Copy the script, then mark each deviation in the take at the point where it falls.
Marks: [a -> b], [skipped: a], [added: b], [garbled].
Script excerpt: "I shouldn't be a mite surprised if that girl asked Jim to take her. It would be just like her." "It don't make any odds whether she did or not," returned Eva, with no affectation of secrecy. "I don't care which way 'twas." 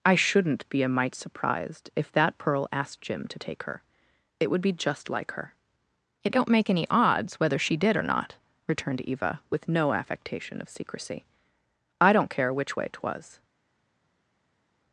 "I shouldn't be a mite surprised if that [girl -> pearl] asked Jim to take her. It would be just like her." "It don't make any odds whether she did or not," returned Eva, with no affectation of secrecy. "I don't care which way 'twas."